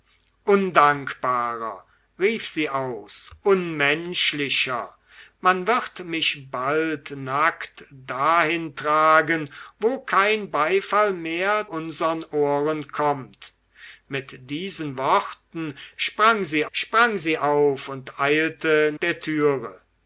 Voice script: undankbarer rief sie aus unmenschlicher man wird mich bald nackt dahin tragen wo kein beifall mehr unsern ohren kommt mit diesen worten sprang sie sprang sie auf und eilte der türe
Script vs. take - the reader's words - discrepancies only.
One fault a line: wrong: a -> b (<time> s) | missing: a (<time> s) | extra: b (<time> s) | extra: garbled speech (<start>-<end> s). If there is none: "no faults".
no faults